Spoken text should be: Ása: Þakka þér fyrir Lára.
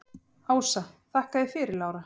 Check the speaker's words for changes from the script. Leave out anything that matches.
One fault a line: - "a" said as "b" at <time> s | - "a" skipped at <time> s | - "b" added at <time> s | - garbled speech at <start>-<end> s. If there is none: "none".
none